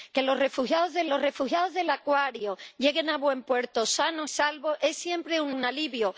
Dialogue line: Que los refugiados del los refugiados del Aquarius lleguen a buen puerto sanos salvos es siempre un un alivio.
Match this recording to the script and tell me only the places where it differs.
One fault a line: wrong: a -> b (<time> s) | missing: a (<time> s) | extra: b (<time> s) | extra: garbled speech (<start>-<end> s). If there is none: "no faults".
no faults